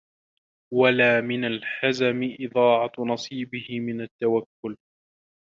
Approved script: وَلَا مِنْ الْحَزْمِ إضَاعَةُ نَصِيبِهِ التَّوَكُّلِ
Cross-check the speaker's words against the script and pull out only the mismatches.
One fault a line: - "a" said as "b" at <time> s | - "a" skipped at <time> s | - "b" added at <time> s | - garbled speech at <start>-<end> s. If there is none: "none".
- "مِنْ" added at 3.8 s